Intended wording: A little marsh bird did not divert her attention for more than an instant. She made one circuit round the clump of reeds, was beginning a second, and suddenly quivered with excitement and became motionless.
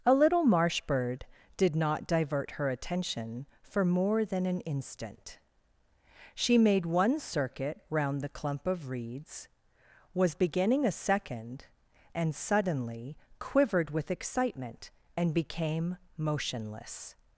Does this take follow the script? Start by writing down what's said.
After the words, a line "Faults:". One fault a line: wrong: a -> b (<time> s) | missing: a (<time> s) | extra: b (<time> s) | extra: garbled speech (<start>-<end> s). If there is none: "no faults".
A little marsh bird did not divert her attention for more than an instant. She made one circuit round the clump of reeds, was beginning a second, and suddenly quivered with excitement and became motionless.
Faults:
no faults